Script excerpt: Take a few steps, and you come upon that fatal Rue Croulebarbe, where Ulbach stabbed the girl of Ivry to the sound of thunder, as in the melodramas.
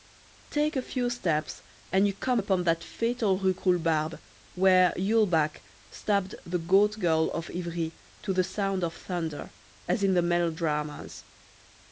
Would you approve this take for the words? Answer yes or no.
no